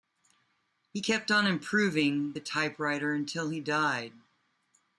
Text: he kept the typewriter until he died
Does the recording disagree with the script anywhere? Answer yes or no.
yes